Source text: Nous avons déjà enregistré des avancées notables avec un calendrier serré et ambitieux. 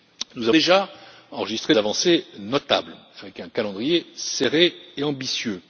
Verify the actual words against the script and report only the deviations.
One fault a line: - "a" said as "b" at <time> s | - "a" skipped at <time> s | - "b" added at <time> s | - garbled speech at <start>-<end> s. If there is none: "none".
- "avons" skipped at 0.5 s
- "des" skipped at 1.7 s